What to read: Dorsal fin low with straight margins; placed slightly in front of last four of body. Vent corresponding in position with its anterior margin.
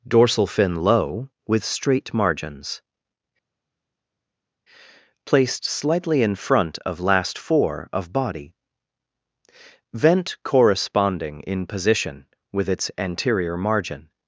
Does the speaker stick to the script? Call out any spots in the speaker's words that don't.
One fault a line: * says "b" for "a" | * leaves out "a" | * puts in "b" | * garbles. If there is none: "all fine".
all fine